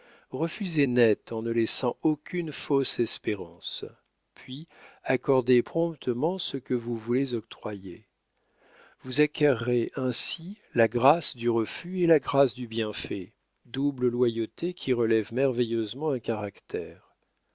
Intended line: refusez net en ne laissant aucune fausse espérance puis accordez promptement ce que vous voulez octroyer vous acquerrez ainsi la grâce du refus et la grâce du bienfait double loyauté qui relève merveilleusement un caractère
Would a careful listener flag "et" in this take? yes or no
no